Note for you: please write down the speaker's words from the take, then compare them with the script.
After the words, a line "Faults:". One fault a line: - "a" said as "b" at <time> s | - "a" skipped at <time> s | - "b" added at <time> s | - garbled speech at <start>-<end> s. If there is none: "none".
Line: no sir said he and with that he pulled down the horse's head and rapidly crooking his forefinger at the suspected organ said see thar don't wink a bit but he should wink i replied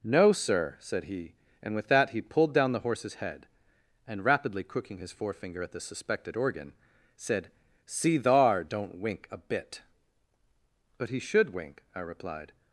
no sir said he and with that he pulled down the horse's head and rapidly crooking his forefinger at the suspected organ said see thar don't wink a bit but he should wink i replied
Faults:
none